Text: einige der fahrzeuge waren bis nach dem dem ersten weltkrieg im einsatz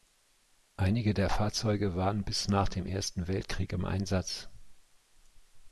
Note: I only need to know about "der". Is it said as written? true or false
true